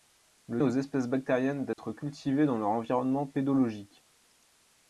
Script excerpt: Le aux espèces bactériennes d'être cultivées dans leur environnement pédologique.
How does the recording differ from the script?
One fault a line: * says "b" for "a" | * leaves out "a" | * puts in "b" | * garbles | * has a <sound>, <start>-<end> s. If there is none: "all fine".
* has a dropout, 1.7-1.8 s